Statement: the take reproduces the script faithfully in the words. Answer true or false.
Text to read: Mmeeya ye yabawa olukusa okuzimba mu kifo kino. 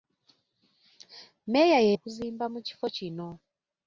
false